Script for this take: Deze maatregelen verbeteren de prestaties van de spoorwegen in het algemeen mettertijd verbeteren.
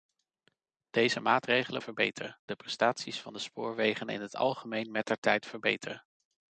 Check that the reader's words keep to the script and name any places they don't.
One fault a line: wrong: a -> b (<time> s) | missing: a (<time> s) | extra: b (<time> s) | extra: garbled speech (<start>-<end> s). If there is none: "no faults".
no faults